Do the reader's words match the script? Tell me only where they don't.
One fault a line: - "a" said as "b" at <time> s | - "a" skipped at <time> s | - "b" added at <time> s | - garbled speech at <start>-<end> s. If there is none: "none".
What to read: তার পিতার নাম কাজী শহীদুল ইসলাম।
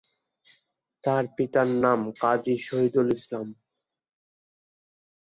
none